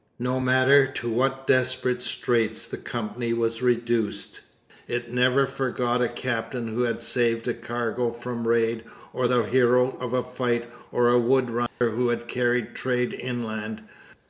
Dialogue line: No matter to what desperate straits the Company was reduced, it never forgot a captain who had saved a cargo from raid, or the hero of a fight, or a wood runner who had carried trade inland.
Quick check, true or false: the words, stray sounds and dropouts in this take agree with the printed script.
false